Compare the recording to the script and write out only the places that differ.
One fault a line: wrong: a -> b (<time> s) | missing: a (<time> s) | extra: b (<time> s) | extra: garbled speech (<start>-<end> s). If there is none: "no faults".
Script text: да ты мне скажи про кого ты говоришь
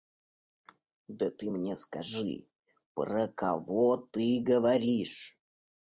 no faults